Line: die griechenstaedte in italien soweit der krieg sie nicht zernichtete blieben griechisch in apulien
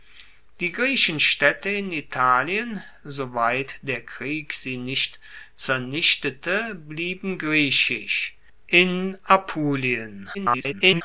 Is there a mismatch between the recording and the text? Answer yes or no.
yes